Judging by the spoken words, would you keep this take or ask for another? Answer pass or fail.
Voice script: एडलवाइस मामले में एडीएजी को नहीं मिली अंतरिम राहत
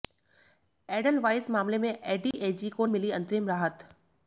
fail